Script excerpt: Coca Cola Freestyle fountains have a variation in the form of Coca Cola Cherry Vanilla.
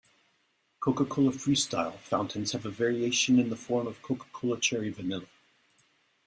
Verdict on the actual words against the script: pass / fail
pass